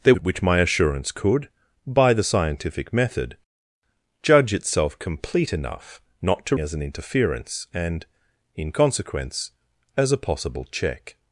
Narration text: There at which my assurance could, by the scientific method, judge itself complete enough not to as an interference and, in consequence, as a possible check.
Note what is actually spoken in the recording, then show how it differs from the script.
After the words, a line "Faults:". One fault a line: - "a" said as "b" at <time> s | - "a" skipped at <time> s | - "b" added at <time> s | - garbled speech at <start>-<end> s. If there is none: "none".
There at which my assurance could, by the scientific method, judge itself complete enough not to as an interference and, in consequence, as a possible check.
Faults:
none